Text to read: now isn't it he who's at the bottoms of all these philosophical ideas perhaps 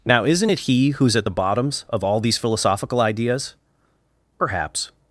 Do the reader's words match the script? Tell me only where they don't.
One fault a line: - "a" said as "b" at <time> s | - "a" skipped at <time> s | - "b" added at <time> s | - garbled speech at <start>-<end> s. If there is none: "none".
none